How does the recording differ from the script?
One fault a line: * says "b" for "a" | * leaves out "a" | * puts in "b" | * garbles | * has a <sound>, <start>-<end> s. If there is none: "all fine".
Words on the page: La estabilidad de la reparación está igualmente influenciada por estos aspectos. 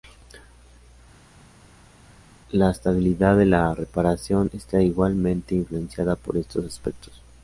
all fine